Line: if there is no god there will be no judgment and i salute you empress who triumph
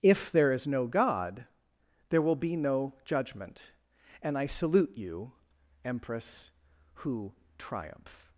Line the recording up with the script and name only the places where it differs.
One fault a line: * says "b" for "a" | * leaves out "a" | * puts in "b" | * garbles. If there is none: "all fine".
all fine